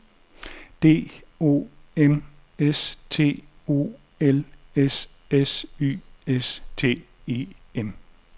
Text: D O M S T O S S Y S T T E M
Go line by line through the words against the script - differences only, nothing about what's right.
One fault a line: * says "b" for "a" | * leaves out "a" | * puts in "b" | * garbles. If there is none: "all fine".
* puts in "L"
* leaves out "T"